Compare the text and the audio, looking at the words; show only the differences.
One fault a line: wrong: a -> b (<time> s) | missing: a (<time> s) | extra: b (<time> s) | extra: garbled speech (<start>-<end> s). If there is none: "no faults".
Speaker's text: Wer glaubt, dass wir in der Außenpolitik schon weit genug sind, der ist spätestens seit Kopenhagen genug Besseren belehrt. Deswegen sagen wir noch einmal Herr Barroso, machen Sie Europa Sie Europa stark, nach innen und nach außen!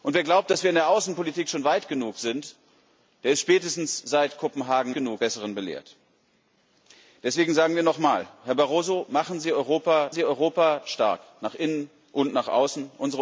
no faults